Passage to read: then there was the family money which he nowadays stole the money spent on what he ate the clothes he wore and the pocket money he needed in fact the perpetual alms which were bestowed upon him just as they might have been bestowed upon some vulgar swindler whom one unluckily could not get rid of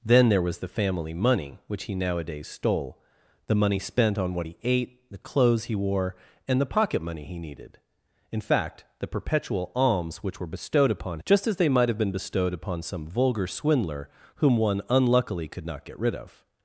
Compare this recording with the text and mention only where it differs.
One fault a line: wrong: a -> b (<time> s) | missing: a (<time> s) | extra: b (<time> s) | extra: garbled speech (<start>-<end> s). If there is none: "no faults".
missing: him (11.2 s)